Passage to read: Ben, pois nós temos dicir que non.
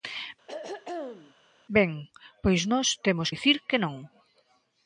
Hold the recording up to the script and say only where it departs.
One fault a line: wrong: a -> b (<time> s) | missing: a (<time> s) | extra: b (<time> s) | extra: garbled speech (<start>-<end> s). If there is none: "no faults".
no faults